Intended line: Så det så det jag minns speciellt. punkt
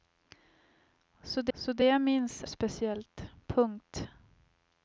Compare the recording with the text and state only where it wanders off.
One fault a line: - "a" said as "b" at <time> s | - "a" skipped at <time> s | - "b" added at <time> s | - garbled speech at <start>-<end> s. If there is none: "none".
none